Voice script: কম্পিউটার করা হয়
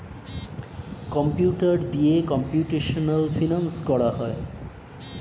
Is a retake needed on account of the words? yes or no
yes